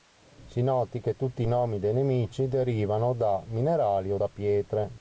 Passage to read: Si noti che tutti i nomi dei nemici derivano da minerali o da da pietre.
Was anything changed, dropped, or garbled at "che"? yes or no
no